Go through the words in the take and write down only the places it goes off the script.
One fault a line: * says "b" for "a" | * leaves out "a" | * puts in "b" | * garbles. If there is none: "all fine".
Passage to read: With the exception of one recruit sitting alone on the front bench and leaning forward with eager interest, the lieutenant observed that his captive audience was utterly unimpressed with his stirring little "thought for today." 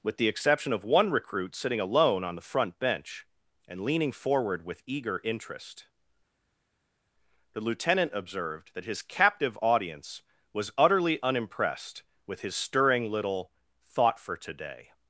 all fine